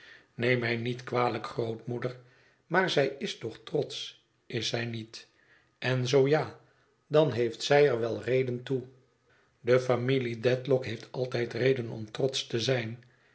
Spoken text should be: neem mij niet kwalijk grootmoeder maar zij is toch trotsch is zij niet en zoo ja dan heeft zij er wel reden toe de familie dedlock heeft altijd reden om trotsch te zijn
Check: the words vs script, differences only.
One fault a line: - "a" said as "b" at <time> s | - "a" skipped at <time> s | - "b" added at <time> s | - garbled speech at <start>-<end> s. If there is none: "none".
none